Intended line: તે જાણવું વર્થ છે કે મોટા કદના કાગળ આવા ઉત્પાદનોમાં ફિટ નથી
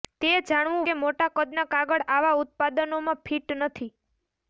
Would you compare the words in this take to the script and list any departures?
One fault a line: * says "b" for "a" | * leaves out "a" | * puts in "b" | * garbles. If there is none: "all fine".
* leaves out "વર્થ છે"